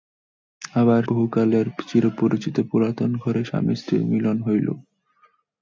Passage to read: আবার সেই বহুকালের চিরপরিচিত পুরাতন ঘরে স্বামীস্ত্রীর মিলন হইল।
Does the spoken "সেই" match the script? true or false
false